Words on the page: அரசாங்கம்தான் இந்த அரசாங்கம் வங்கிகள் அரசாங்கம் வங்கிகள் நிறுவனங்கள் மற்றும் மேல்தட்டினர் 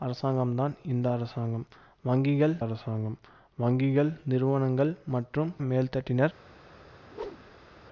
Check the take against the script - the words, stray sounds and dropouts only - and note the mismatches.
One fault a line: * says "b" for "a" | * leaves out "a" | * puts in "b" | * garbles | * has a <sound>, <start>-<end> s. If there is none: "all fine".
* has a whoosh, 7.1-7.7 s